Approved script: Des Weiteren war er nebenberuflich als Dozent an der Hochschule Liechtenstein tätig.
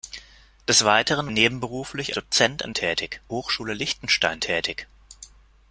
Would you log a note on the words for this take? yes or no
yes